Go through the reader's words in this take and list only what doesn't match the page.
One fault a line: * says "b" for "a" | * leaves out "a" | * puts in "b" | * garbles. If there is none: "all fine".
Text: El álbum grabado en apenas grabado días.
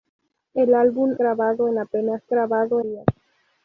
all fine